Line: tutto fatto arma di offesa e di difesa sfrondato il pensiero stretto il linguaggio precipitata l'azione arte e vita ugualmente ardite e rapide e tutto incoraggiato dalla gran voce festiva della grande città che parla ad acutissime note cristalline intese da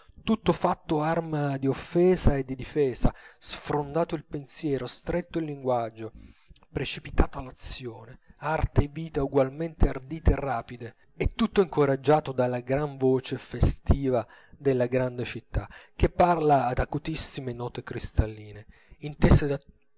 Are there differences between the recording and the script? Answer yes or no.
no